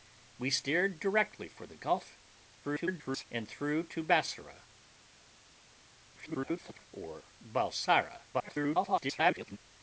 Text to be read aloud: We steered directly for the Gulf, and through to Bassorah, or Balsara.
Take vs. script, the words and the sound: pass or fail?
fail